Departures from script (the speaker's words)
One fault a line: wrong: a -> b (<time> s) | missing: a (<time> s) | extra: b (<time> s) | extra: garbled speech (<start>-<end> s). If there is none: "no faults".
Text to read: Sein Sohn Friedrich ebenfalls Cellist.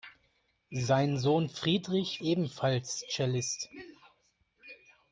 no faults